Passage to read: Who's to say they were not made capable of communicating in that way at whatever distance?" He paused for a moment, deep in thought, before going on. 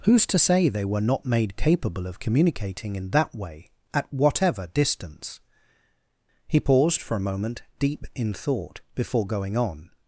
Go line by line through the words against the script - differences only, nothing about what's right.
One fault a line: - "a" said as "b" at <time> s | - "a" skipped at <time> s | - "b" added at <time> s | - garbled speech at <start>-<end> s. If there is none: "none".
none